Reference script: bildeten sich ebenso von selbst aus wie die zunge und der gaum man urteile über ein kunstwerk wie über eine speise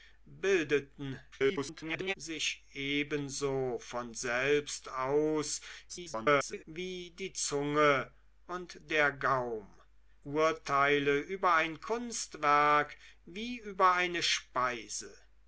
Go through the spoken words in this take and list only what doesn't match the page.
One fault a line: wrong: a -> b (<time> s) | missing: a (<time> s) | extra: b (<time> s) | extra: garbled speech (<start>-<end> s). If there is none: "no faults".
extra: garbled speech (1.3-2.1 s)
extra: garbled speech (5.9-6.6 s)
missing: man (9.7 s)